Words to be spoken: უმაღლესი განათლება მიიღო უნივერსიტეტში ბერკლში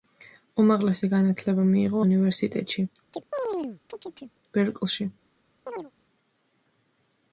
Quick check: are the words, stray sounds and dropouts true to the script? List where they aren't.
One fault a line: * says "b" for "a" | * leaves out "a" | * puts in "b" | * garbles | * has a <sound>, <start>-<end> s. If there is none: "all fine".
* has a chirp, 3.1-4.4 s
* has a chirp, 5.7-5.9 s